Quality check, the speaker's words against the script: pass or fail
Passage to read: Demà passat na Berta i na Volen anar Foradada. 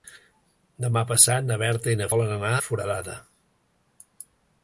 pass